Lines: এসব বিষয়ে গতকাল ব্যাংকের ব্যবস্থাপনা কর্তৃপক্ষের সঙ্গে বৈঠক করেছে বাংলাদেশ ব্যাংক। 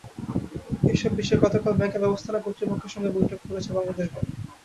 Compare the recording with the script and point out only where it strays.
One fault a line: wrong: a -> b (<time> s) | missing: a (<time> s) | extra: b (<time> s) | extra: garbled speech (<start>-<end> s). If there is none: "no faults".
no faults